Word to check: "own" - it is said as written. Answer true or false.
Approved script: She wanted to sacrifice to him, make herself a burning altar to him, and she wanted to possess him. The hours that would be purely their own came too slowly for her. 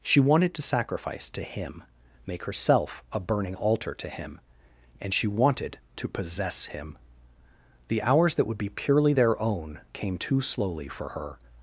true